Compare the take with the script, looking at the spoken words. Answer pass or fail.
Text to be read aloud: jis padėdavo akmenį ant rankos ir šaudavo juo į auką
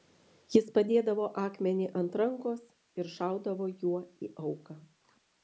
pass